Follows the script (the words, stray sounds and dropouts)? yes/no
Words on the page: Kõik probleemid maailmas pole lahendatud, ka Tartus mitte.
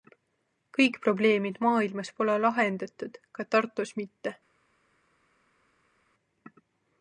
yes